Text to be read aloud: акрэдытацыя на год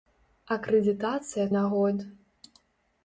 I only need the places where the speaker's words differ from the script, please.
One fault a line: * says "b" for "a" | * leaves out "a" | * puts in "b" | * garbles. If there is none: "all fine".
all fine